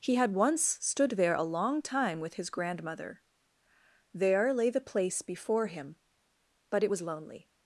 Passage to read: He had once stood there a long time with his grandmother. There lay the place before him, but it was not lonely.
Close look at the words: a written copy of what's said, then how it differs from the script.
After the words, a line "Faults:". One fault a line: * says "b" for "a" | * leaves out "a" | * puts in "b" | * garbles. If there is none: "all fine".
He had once stood there a long time with his grandmother. There lay the place before him, but it was lonely.
Faults:
* leaves out "not"